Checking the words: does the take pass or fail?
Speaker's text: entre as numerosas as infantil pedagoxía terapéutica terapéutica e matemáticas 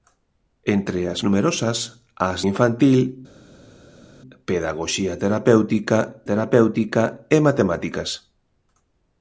pass